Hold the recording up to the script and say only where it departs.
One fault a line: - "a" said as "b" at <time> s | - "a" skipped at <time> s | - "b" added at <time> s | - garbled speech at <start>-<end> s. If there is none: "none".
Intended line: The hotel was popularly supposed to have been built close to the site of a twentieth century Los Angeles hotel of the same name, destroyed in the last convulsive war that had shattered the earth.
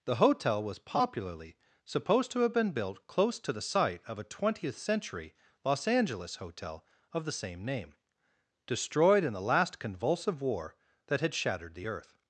none